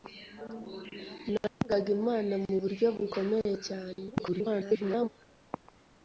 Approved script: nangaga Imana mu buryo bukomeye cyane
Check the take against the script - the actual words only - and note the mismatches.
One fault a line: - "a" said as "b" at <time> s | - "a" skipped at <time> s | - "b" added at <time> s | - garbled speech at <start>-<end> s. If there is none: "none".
- garbled speech at 4.1-5.1 s